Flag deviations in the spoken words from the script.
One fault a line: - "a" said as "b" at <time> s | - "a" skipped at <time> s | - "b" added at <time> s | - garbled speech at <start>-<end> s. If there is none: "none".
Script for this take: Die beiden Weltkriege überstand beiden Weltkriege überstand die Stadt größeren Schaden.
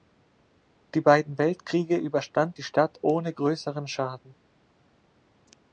- "beiden Weltkriege überstand" skipped at 2.6 s
- "ohne" added at 3.0 s